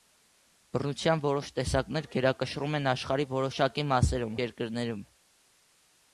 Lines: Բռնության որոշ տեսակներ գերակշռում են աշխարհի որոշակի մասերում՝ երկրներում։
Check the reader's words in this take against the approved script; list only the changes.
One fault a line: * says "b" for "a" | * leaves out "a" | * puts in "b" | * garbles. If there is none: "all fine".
all fine